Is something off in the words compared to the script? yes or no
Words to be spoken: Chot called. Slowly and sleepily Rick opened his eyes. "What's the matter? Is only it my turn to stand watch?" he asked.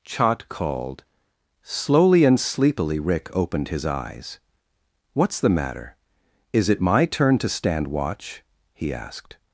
yes